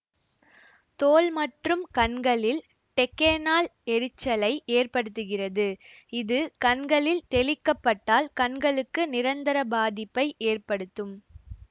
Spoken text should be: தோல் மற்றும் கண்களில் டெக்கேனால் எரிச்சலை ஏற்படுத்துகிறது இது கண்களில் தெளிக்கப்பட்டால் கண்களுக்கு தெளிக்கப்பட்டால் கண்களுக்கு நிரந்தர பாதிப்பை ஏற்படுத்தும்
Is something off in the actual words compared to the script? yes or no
yes